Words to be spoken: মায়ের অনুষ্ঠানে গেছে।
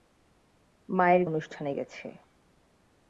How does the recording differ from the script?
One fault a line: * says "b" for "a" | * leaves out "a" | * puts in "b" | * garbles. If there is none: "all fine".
all fine